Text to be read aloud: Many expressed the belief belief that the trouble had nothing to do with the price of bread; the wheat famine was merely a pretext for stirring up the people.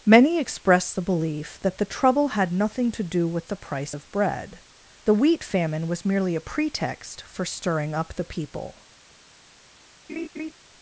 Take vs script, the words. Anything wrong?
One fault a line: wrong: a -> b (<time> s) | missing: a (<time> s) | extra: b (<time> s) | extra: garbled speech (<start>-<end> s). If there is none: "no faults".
missing: belief (1.6 s)